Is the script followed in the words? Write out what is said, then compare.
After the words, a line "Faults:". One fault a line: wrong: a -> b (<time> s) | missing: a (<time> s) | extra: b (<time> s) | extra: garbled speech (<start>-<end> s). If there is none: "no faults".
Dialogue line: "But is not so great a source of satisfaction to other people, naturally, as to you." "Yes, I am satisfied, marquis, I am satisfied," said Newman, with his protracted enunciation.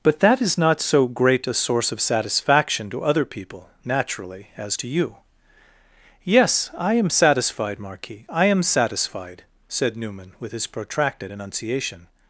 "But that is not so great a source of satisfaction to other people, naturally, as to you." "Yes, I am satisfied, marquis, I am satisfied," said Newman, with his protracted enunciation.
Faults:
extra: that (0.2 s)